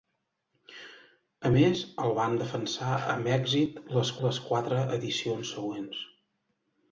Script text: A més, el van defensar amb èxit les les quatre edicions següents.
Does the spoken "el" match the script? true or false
true